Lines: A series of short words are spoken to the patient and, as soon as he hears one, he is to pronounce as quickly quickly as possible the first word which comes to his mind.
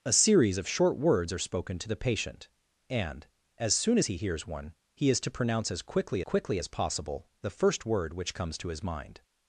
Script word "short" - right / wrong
right